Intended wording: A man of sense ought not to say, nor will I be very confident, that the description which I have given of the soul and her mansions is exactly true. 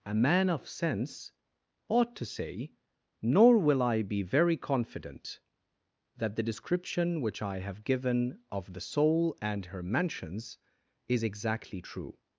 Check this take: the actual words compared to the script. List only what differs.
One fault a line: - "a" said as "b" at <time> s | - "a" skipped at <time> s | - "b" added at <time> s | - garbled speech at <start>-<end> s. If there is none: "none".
- "not" skipped at 2.1 s